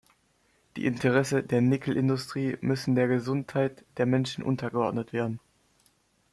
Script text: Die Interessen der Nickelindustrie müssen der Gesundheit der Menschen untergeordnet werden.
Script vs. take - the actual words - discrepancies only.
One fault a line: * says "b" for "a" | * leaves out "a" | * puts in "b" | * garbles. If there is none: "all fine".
all fine